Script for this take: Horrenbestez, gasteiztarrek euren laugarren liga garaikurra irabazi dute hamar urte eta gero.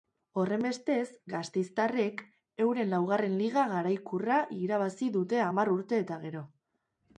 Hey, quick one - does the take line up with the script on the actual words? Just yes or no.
yes